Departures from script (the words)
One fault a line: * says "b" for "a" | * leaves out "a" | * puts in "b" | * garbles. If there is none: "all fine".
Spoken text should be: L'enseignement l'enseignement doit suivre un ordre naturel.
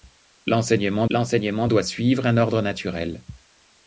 all fine